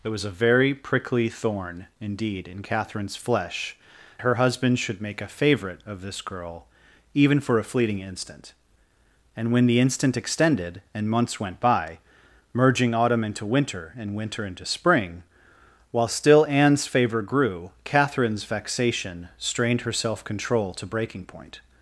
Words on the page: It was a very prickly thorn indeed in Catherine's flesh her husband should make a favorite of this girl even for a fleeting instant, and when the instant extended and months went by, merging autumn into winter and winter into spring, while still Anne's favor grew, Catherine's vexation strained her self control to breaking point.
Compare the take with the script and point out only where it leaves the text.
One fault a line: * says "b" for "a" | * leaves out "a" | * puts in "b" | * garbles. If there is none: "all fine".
all fine